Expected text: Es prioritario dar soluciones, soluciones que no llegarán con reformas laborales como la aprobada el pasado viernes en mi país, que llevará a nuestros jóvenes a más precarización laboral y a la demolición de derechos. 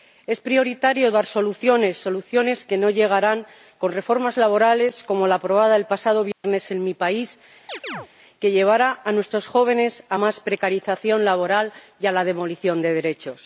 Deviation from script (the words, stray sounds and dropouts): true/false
true